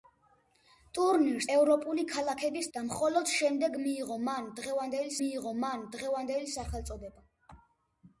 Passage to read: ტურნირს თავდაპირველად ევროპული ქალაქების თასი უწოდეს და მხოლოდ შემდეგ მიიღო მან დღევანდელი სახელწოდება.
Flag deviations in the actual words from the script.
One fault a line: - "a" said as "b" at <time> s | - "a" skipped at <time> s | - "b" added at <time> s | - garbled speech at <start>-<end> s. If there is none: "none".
- "თავდაპირველად" skipped at 1.5 s
- "თასი უწოდეს" skipped at 2.7 s
- "მიიღო მან დღევანდელი" added at 5.2 s